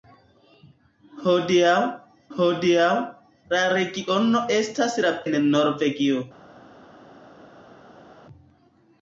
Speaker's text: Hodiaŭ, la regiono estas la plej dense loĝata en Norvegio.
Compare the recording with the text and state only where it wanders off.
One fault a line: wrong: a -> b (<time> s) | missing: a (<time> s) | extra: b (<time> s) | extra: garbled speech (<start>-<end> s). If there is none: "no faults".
extra: hodiaŭ (2.4 s)
missing: plej dense loĝata (5.1 s)